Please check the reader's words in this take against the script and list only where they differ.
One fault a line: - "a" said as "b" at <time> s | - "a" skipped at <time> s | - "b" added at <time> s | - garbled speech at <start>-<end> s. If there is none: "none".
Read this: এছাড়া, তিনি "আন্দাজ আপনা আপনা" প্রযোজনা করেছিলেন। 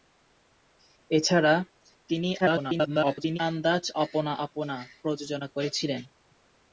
- garbled speech at 2.4-3.4 s